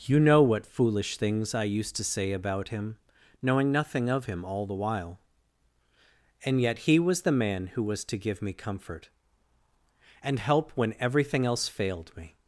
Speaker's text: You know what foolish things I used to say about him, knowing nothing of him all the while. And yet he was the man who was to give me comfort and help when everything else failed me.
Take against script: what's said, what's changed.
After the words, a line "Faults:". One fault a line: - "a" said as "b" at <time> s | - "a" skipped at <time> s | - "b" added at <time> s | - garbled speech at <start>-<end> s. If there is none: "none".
You know what foolish things I used to say about him, knowing nothing of him all the while. And yet he was the man who was to give me comfort and help when everything else failed me.
Faults:
none